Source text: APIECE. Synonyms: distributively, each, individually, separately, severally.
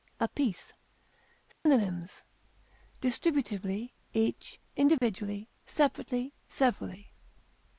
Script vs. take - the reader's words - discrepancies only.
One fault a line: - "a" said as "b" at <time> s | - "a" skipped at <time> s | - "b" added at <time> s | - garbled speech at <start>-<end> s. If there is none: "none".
none